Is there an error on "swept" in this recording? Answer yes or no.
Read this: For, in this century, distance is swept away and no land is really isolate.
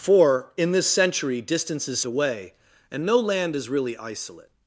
yes